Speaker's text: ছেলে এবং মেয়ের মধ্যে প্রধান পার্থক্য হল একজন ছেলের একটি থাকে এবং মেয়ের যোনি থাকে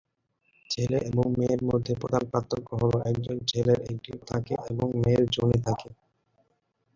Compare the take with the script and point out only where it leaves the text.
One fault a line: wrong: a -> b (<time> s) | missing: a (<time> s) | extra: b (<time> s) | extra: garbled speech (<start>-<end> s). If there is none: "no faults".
no faults